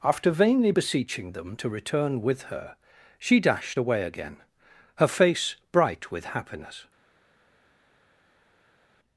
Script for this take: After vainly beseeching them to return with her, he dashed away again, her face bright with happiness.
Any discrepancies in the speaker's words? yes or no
yes